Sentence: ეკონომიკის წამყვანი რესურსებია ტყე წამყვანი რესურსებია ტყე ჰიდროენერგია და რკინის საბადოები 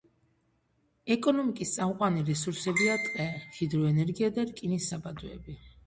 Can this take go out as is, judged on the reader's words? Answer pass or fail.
fail